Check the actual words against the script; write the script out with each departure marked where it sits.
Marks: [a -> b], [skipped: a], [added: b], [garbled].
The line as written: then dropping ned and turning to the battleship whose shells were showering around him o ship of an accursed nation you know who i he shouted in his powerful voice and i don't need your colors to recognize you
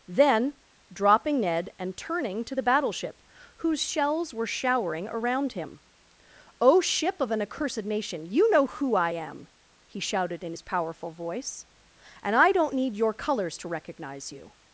then dropping ned and turning to the battleship whose shells were showering around him o ship of an accursed nation you know who i [added: am] he shouted in his powerful voice and i don't need your colors to recognize you